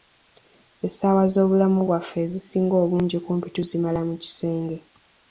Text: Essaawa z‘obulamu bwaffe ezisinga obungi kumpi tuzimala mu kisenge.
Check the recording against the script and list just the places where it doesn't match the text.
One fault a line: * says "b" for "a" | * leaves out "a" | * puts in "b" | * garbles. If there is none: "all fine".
all fine